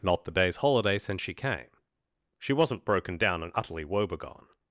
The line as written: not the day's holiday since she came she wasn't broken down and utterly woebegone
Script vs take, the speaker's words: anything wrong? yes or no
no